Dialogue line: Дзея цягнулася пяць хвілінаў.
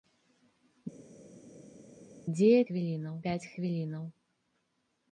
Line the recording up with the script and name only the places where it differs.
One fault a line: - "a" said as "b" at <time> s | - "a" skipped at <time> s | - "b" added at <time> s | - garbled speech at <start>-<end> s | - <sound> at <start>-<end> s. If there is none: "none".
- "цягнулася" said as "хвілінаў" at 2.6 s